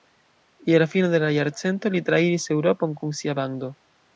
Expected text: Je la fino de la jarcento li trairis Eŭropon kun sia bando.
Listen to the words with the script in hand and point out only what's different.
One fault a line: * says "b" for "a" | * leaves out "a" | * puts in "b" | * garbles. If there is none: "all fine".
all fine